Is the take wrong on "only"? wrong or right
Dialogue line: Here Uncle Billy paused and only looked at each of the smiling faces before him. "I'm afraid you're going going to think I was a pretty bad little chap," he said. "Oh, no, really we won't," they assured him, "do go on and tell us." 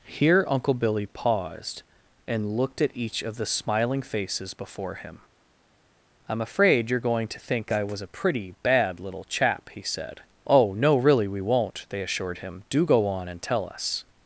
wrong